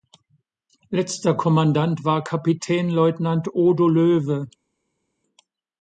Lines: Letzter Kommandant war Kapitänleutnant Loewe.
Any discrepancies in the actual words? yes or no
yes